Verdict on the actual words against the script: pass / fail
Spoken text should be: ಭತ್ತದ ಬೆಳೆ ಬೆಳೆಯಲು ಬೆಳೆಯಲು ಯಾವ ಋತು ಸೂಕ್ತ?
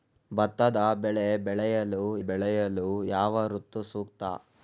pass